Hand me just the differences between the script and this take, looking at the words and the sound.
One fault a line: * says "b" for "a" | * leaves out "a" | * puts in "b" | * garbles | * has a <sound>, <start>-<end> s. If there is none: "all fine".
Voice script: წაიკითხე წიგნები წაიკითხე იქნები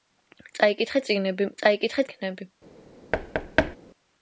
* has a thud, 3.1-3.8 s